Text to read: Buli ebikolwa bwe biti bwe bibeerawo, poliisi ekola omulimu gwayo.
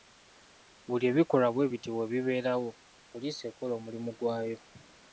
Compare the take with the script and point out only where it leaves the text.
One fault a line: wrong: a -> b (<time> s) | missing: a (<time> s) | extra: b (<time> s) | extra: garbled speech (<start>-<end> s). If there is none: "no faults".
no faults